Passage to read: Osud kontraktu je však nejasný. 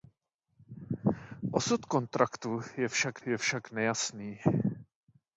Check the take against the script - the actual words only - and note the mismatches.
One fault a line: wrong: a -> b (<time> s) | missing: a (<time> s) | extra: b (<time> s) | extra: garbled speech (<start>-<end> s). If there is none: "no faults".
extra: je však (3.3 s)